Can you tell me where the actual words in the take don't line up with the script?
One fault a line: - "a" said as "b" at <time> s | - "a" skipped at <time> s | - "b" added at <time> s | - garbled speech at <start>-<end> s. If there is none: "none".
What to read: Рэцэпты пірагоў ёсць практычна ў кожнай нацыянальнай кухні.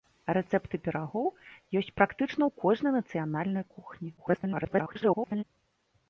- garbled speech at 4.2-5.4 s